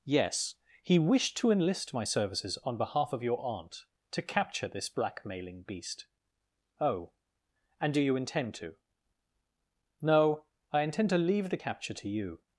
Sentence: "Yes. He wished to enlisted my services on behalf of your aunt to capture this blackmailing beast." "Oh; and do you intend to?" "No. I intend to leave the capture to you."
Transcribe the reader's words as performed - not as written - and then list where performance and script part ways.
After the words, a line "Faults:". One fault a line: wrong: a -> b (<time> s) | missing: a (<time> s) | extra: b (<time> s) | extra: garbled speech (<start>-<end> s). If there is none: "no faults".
"Yes. He wished to enlist my services on behalf of your aunt to capture this blackmailing beast." "Oh; and do you intend to?" "No. I intend to leave the capture to you."
Faults:
wrong: enlisted -> enlist (1.5 s)